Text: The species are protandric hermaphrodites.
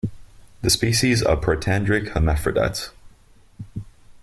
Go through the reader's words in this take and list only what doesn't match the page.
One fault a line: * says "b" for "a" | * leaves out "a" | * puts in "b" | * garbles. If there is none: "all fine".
all fine